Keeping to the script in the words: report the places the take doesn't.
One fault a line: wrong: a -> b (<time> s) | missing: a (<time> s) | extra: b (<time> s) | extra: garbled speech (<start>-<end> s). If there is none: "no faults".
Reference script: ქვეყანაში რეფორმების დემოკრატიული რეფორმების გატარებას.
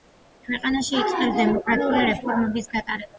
wrong: რეფორმების -> იწყებს (1.0 s)